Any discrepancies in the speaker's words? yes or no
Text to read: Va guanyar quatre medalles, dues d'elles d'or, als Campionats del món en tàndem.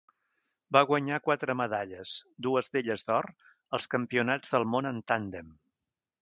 no